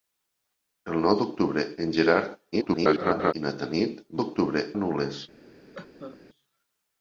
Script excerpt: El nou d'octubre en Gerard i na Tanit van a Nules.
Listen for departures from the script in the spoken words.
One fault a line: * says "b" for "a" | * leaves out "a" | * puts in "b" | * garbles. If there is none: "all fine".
* garbles
* says "d'octubre" for "van"